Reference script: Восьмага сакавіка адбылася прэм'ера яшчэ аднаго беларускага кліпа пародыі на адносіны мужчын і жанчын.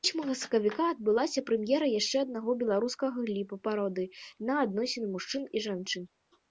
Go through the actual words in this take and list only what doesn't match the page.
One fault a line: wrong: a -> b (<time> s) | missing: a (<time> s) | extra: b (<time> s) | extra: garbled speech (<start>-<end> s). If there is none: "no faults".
no faults